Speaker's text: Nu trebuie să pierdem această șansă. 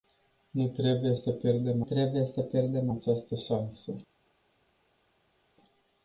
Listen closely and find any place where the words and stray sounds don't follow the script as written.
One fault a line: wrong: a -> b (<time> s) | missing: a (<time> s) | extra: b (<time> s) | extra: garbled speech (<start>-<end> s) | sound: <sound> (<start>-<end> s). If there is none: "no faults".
extra: trebuie să pierdem (1.8 s)